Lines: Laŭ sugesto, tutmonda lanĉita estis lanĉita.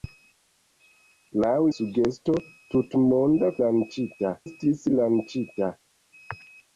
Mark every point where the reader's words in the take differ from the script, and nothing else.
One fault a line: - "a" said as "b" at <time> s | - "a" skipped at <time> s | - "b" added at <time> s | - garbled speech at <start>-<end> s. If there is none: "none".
none